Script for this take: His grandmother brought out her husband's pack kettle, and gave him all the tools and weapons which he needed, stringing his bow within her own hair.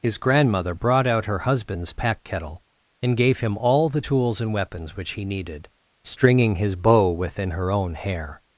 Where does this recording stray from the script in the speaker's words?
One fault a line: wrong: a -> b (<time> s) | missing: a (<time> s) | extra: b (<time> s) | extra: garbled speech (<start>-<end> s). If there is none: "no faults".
no faults